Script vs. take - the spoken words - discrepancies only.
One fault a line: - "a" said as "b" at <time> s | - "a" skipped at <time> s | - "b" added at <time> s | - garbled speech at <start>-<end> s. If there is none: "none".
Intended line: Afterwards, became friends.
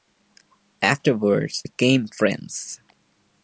none